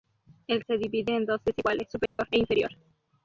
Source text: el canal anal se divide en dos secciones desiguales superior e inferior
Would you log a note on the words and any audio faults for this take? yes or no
yes